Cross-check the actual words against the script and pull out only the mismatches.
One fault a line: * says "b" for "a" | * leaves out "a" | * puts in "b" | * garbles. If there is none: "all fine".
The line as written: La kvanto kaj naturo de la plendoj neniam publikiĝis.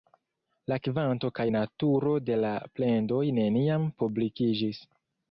all fine